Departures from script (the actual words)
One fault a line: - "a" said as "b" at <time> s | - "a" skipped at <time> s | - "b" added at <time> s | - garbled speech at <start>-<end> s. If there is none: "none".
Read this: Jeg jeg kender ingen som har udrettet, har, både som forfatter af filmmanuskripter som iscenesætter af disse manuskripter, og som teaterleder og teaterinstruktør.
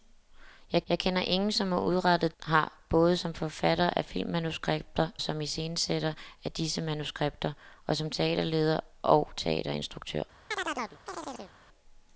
none